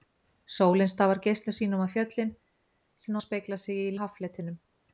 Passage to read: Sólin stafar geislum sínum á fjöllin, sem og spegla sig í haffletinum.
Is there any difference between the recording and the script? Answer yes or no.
no